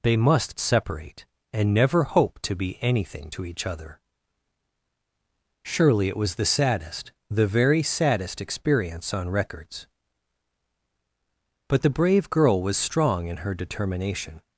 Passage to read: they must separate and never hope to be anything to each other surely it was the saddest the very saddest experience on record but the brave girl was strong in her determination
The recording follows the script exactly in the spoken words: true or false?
false